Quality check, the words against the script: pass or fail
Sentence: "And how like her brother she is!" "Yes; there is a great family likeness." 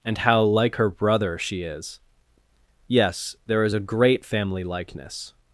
pass